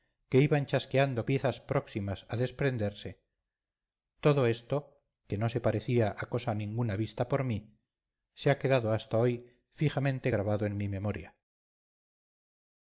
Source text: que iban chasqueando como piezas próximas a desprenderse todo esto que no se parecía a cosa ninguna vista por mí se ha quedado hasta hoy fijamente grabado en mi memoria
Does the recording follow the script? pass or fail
fail